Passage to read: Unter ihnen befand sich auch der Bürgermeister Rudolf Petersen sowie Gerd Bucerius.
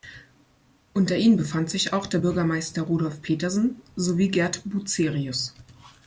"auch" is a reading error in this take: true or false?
false